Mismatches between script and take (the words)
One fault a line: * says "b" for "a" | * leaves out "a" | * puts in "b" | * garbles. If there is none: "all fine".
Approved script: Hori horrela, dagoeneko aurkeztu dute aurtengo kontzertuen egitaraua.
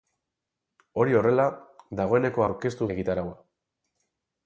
* leaves out "dute aurtengo kontzertuen"